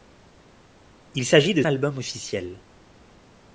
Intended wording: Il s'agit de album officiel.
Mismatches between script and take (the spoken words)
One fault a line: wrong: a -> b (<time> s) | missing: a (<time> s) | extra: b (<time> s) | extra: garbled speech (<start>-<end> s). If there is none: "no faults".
no faults